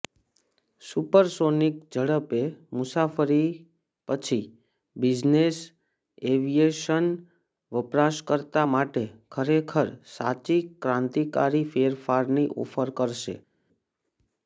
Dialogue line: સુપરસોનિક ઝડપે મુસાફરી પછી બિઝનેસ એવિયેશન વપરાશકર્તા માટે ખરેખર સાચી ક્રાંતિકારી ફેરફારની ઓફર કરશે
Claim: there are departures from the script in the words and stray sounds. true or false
false